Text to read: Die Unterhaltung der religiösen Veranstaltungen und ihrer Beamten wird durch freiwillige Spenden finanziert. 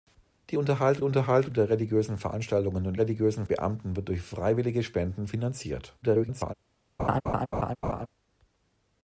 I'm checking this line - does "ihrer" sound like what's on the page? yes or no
no